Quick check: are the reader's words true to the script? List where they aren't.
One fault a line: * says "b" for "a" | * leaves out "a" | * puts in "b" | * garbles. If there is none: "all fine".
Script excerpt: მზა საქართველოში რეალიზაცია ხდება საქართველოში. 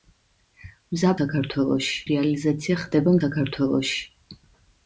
all fine